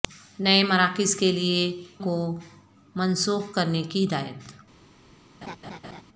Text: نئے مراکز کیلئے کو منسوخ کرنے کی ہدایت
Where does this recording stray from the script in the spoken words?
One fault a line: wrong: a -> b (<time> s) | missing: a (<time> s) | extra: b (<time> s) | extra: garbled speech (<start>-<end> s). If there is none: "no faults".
no faults